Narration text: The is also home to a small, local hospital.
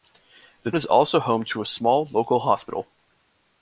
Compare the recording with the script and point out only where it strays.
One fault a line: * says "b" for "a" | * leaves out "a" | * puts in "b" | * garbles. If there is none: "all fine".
all fine